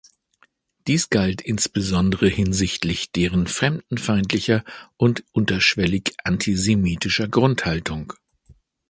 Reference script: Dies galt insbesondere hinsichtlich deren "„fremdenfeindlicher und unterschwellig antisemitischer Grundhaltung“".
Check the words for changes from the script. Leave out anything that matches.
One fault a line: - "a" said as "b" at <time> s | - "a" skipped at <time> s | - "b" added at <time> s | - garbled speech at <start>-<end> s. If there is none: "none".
none